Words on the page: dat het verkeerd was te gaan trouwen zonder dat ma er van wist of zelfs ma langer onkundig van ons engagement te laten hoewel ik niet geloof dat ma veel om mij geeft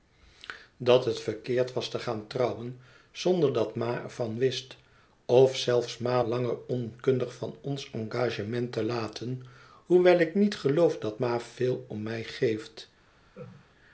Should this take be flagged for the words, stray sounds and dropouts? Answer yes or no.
yes